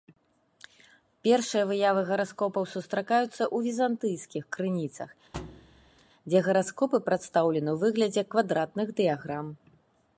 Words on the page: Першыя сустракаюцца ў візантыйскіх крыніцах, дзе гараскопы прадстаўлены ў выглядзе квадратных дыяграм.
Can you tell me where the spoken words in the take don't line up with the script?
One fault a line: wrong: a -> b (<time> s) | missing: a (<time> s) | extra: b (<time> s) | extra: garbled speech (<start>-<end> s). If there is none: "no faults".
extra: выявы гараскопаў (1.7 s)